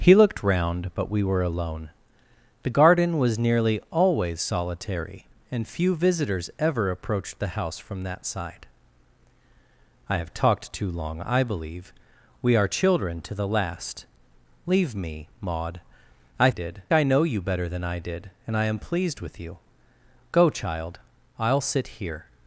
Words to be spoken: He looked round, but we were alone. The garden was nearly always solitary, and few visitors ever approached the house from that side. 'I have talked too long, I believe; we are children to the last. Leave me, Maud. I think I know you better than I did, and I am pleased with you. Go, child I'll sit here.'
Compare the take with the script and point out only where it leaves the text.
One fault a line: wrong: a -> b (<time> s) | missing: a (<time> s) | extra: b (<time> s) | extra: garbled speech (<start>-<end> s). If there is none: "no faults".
wrong: think -> did (16.5 s)